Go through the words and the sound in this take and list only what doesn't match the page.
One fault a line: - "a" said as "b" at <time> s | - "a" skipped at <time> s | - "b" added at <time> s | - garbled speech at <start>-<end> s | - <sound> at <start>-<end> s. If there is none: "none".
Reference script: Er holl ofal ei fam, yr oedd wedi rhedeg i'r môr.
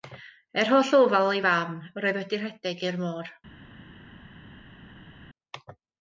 none